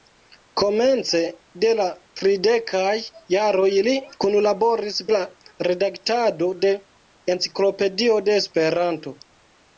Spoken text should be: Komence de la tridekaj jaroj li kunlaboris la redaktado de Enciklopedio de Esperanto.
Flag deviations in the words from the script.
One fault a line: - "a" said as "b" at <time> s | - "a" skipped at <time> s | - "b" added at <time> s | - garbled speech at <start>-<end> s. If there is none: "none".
none